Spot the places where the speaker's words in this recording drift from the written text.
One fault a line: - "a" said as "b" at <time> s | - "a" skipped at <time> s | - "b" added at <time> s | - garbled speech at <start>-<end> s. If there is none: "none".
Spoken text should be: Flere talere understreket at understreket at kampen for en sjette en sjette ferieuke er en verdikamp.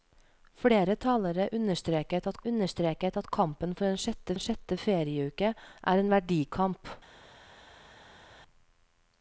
none